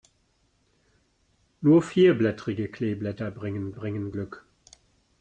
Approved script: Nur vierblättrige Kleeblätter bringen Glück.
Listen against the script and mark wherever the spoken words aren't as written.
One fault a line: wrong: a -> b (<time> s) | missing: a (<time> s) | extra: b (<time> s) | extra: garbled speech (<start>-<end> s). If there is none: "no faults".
extra: bringen (3.7 s)